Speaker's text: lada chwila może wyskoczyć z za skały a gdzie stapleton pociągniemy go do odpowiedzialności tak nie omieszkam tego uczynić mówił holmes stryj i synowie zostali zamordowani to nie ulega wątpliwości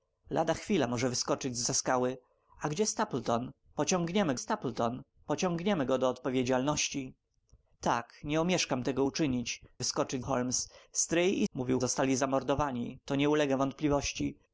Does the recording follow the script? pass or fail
fail